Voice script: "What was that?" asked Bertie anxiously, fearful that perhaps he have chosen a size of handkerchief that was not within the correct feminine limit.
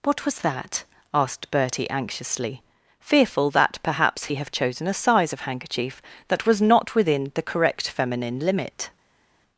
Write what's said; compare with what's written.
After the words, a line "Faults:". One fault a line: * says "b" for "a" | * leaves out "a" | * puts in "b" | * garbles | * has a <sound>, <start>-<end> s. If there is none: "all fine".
"What was that?" asked Bertie anxiously, fearful that perhaps he have chosen a size of handkerchief that was not within the correct feminine limit.
Faults:
all fine